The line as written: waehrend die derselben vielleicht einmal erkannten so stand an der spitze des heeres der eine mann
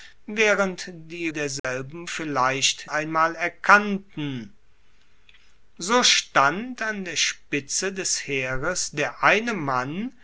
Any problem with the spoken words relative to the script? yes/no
no